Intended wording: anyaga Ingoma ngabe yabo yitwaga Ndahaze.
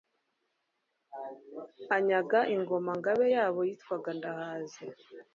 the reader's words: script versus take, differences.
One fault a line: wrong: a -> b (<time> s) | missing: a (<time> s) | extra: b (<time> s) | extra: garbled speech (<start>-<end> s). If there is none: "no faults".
no faults